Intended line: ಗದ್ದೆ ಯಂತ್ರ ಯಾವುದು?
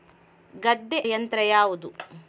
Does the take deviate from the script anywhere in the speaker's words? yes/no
no